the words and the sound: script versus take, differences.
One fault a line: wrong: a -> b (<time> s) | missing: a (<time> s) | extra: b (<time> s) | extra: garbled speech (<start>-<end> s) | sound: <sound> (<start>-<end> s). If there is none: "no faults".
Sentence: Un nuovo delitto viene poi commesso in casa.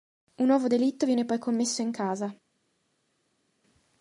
no faults